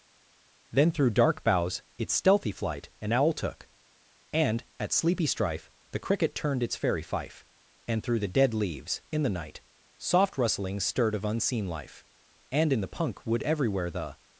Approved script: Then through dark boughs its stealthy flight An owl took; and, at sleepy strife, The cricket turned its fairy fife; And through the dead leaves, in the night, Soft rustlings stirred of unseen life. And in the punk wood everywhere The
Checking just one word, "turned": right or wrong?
right